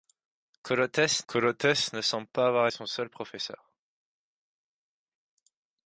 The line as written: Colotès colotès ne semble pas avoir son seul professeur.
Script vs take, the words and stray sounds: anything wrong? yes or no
no